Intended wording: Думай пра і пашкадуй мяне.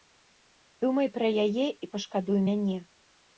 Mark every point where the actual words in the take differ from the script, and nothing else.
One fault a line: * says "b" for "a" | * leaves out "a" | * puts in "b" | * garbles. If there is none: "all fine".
* puts in "яе"